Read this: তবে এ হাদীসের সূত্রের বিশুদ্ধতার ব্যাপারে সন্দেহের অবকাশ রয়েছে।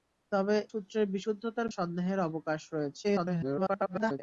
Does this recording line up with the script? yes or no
no